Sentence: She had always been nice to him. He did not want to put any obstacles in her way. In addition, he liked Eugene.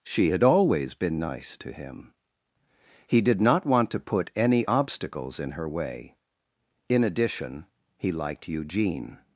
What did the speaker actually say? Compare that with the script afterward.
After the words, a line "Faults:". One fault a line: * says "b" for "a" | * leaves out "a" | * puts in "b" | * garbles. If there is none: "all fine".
She had always been nice to him. He did not want to put any obstacles in her way. In addition, he liked Eugene.
Faults:
all fine